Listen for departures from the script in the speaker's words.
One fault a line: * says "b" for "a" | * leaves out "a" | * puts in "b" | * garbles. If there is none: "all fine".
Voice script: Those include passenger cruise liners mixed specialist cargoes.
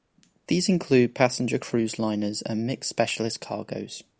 * says "These" for "Those"
* puts in "and"